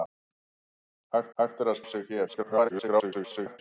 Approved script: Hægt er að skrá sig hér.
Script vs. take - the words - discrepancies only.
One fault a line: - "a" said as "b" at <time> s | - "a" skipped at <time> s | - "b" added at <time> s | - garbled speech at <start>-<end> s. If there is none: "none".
- "hægt" added at 1.4 s
- "skrá" skipped at 1.8 s
- garbled speech at 2.3-3.6 s